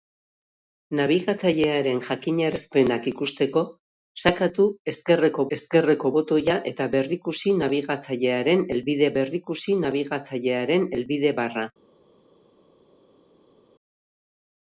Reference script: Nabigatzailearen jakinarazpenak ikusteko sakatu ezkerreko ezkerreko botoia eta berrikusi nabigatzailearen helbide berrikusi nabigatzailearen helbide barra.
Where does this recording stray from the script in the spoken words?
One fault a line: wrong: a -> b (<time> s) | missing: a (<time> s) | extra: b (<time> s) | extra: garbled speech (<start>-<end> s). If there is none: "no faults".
no faults